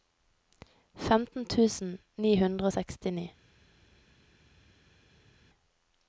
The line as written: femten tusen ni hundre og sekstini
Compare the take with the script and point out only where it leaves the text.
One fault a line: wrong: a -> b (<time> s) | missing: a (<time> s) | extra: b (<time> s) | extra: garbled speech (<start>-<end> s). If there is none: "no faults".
no faults